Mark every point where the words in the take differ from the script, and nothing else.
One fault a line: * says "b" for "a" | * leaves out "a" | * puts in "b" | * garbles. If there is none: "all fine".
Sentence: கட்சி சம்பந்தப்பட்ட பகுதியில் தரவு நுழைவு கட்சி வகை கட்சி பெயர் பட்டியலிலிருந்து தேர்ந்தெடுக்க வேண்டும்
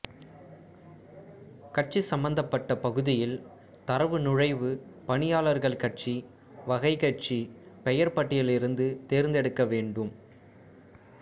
* puts in "பணியாளர்கள்"